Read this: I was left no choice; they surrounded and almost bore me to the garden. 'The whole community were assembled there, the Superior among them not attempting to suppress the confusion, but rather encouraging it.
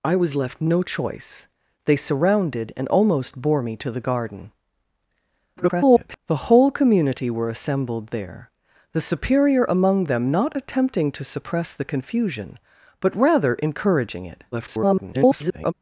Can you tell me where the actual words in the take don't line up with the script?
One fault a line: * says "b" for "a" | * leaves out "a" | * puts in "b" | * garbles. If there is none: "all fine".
* garbles
* garbles